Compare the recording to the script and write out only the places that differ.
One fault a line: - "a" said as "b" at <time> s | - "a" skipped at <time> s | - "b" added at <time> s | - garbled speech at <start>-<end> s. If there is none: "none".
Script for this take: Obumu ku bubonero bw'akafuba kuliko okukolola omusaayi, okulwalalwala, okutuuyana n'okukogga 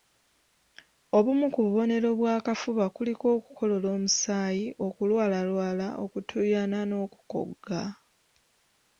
none